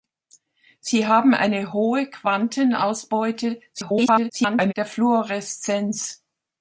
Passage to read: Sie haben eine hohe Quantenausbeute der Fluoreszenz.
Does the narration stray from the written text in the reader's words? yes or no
yes